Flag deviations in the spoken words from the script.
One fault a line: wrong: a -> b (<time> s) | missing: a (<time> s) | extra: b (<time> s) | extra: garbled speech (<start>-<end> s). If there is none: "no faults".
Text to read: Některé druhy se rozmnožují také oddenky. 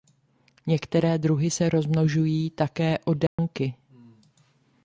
no faults